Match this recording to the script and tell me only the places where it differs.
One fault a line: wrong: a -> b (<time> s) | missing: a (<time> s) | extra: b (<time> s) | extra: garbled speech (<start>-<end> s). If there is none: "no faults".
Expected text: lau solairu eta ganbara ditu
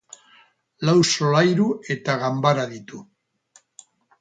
no faults